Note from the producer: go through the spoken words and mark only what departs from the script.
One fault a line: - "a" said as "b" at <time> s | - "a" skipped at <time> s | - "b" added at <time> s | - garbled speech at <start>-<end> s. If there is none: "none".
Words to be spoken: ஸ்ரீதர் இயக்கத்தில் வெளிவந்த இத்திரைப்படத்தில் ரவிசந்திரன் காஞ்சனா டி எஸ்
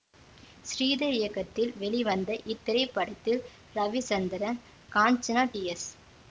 none